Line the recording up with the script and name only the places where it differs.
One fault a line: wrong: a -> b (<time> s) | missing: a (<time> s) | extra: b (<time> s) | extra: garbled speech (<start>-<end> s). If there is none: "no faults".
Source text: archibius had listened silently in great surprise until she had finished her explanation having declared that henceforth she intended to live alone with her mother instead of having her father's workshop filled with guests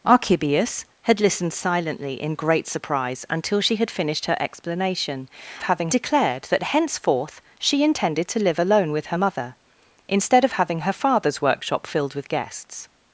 no faults